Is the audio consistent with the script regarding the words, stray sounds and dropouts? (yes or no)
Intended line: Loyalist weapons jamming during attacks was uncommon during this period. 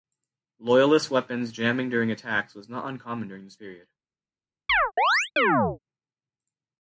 no